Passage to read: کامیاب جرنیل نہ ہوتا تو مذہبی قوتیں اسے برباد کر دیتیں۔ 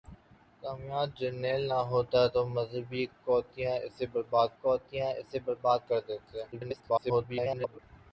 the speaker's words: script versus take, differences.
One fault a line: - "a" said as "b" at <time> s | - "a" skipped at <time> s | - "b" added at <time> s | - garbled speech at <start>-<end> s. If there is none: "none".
- "قوتیں اسے برباد" added at 4.6 s
- garbled speech at 6.5-7.8 s